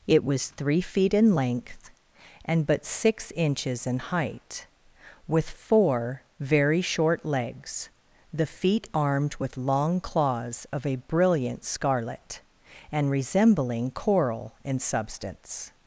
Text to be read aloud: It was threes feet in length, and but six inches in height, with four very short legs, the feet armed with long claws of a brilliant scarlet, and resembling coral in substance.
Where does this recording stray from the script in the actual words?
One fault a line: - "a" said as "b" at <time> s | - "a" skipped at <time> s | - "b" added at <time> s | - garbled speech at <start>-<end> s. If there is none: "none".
- "threes" said as "three" at 0.5 s